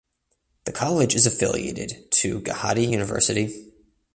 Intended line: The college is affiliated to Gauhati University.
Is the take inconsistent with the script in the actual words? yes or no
no